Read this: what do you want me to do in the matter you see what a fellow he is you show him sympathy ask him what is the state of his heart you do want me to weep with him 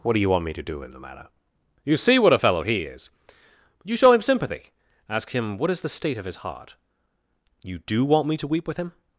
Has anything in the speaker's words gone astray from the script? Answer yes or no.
no